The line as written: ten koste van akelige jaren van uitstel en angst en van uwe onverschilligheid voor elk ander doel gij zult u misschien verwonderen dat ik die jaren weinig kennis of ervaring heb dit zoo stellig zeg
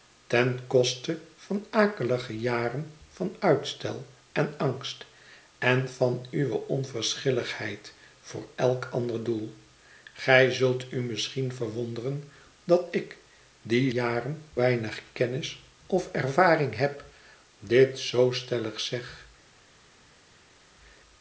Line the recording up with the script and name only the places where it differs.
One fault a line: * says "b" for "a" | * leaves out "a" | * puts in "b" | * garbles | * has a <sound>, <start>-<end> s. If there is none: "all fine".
all fine